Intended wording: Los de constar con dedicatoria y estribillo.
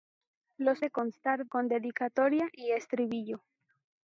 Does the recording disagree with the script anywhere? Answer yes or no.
no